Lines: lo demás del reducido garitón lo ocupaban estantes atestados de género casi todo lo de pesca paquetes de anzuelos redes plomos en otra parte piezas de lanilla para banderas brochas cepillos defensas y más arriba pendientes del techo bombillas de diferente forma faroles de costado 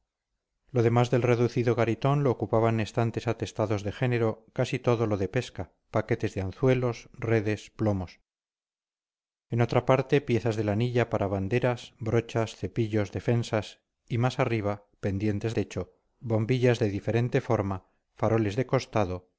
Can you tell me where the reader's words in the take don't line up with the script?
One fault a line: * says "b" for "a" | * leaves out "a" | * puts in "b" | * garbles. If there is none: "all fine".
* leaves out "del"